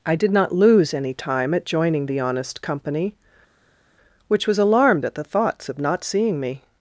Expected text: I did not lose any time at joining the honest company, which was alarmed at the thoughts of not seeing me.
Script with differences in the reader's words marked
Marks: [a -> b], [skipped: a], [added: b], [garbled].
I did not lose any time at joining the honest company, which was alarmed at the thoughts of not seeing me.